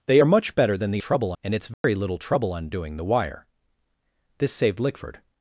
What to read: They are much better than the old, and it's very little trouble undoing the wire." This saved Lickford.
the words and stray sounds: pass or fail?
fail